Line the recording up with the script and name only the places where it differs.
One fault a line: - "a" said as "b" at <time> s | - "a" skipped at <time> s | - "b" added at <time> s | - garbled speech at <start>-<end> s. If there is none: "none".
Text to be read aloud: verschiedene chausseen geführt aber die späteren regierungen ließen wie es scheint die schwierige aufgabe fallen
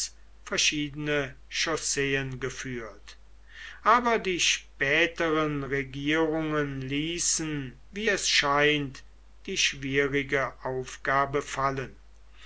none